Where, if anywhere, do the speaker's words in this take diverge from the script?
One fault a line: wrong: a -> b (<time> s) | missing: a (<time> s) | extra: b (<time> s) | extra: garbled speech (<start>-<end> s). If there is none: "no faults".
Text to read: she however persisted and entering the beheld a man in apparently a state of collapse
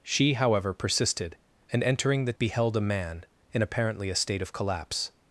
no faults